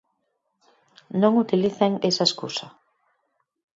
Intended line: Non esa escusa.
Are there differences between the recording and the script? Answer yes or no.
yes